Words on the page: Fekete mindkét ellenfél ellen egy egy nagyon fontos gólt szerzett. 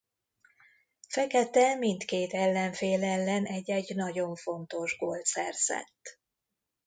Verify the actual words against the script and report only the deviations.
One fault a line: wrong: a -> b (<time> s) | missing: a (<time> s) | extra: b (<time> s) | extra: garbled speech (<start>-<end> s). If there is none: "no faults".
no faults